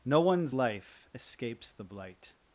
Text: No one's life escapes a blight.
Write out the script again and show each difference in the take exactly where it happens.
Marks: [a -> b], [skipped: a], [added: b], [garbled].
No one's life escapes [a -> the] blight.